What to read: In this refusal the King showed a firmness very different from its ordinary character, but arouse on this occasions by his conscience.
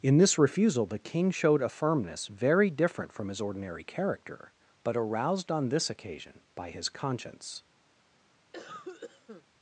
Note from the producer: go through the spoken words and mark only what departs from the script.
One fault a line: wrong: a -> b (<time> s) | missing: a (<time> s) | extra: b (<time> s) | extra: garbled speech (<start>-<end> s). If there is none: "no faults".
wrong: its -> his (3.3 s)
wrong: arouse -> aroused (4.9 s)
wrong: occasions -> occasion (5.9 s)